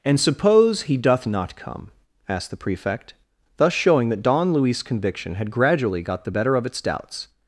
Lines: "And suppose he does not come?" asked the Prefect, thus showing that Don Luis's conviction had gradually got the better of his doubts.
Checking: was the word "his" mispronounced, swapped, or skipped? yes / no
yes